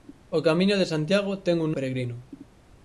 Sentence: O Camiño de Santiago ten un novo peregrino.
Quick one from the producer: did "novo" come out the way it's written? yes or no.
no